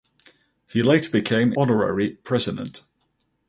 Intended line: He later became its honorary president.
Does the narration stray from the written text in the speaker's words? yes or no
yes